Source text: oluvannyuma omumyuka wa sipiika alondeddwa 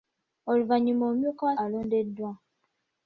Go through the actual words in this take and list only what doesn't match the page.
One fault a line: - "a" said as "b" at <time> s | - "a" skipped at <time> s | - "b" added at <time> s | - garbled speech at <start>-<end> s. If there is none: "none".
- "sipiika" skipped at 1.6 s